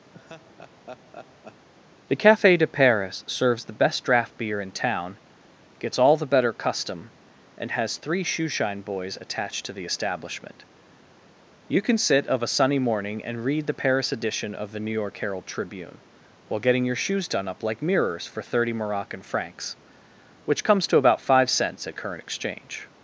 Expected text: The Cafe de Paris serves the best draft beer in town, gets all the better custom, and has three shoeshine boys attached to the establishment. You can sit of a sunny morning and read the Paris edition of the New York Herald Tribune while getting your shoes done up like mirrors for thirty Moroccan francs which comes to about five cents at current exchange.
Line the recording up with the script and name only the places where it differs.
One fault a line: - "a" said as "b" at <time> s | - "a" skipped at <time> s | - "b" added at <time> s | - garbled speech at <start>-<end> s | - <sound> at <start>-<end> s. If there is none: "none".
- laugh at 0.1-1.7 s